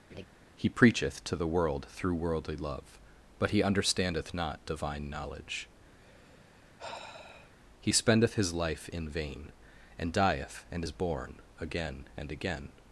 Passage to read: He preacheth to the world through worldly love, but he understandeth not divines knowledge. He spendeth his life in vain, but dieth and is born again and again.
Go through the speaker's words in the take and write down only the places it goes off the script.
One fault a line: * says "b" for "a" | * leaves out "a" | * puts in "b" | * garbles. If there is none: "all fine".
* says "divine" for "divines"
* says "and" for "but"